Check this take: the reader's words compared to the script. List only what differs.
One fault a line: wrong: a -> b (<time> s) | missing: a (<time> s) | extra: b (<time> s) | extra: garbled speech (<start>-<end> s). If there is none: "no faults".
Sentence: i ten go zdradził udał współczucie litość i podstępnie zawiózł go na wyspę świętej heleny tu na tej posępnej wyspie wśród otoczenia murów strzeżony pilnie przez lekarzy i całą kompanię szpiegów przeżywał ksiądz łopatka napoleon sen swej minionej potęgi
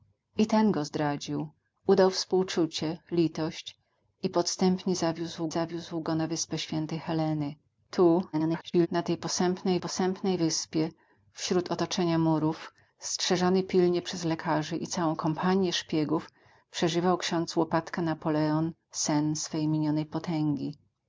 extra: zawiózł (5.5 s)
extra: garbled speech (8.3-8.9 s)
extra: posępnej (9.8 s)